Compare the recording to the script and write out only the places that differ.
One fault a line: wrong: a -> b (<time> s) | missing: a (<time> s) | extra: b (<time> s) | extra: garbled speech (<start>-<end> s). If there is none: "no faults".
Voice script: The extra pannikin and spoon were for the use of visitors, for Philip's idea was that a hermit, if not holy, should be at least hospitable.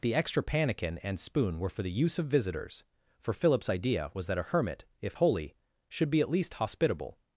missing: not (5.2 s)